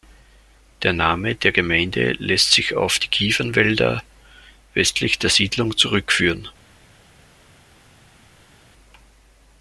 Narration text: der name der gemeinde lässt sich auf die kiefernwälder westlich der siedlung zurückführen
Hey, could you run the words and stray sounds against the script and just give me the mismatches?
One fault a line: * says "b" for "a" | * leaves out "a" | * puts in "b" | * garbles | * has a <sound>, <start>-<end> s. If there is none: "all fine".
all fine